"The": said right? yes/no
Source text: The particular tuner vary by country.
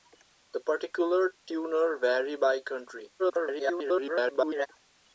yes